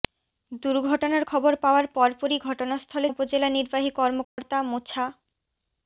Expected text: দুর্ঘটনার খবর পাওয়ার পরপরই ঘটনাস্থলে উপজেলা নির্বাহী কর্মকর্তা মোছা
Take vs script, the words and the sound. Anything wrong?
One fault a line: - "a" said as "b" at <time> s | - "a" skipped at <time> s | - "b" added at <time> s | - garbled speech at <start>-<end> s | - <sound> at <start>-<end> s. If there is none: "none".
- dropout at 4.2-4.4 s